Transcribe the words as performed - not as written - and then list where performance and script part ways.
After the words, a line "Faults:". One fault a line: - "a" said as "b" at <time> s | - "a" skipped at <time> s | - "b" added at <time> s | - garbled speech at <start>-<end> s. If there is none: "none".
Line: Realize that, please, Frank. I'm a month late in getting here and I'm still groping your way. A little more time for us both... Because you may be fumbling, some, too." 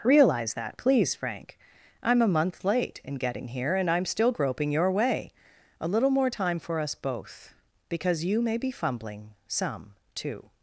Realize that, please, Frank. I'm a month late in getting here and I'm still groping your way. A little more time for us both... Because you may be fumbling, some, too."
Faults:
none